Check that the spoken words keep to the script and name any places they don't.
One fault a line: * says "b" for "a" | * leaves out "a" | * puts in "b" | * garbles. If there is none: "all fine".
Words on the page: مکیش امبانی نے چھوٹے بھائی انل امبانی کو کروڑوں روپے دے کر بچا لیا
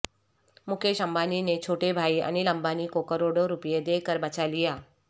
all fine